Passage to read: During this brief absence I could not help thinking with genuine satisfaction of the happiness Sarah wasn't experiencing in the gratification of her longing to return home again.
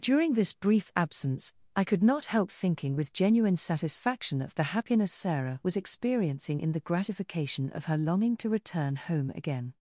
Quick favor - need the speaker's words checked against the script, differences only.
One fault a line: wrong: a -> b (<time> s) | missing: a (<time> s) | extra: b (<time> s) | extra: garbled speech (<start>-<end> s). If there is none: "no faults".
wrong: wasn't -> was (5.6 s)